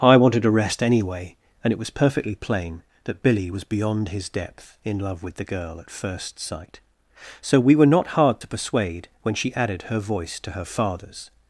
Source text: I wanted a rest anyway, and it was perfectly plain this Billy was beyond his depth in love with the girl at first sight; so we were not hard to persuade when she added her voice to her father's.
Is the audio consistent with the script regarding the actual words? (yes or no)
no